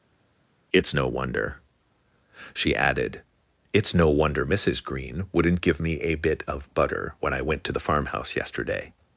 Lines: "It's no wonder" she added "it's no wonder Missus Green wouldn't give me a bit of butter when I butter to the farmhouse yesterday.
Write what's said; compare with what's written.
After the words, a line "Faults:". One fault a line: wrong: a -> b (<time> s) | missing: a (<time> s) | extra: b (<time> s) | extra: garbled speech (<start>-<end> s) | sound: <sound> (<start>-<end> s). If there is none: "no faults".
"It's no wonder" she added "it's no wonder Missus Green wouldn't give me a bit of butter when I went to the farmhouse yesterday.
Faults:
wrong: butter -> went (7.4 s)